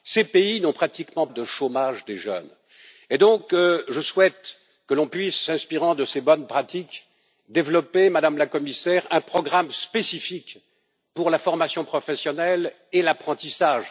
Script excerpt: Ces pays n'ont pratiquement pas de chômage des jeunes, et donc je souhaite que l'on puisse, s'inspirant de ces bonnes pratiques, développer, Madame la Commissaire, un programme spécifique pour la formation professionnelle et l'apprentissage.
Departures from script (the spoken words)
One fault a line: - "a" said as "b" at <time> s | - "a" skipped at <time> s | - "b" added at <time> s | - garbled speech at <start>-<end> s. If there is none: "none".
- "pas" skipped at 1.3 s